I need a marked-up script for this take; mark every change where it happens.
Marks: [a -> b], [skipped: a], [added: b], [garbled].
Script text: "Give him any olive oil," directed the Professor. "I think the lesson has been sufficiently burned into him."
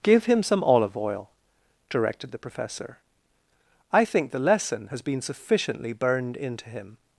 "Give him [any -> some] olive oil," directed the Professor. "I think the lesson has been sufficiently burned into him."